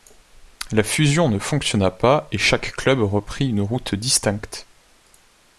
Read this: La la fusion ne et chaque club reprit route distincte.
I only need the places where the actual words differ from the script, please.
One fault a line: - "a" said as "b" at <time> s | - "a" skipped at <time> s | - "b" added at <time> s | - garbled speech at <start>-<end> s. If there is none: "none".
- "la" skipped at 0.8 s
- "fonctionna pas" added at 1.4 s
- "une" added at 3.5 s